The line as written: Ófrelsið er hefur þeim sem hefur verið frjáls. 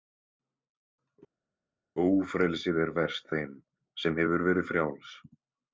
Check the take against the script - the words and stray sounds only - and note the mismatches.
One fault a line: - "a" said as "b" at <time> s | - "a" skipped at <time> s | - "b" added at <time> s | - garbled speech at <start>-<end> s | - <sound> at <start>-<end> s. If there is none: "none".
- "hefur" said as "verst" at 3.0 s